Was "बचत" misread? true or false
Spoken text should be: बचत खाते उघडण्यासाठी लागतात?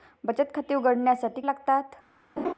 false